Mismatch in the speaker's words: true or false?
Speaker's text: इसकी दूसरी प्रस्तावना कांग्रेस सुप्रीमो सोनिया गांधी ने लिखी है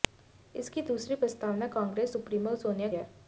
true